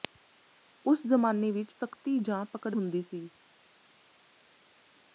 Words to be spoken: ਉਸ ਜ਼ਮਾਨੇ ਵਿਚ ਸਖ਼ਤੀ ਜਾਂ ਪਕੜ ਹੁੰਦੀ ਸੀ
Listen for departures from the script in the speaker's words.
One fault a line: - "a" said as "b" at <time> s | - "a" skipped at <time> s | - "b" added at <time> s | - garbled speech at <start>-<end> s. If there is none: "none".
none